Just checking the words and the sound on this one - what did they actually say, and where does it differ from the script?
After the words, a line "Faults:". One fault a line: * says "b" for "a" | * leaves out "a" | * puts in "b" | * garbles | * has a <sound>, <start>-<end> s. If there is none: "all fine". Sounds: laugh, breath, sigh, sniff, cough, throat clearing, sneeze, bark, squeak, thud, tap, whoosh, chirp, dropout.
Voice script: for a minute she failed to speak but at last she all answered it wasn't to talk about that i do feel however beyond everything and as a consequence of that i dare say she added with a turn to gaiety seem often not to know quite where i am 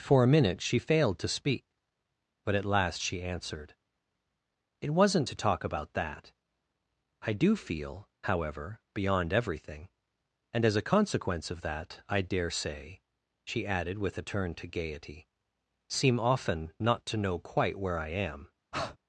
for a minute she failed to speak but at last she answered it wasn't to talk about that i do feel however beyond everything and as a consequence of that i dare say she added with a turn to gaiety seem often not to know quite where i am
Faults:
* leaves out "all"
* has a breath, 18.7-19.0 s